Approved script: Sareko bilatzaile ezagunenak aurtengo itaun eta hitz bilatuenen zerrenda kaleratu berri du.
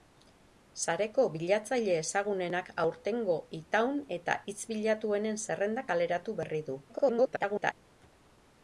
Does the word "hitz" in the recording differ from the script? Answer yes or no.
no